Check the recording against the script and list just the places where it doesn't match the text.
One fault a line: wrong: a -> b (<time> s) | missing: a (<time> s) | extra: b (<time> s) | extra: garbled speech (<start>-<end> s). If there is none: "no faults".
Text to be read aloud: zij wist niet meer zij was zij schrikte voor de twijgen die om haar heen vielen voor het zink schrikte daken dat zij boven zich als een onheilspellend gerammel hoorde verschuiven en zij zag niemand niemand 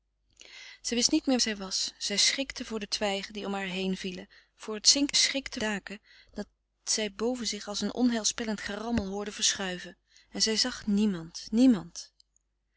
no faults